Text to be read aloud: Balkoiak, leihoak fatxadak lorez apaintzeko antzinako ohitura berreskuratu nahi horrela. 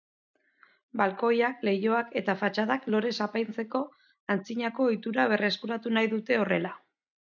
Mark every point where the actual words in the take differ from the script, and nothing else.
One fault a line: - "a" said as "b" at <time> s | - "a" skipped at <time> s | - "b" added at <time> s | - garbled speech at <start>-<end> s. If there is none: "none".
- "eta" added at 2.2 s
- "dute" added at 6.2 s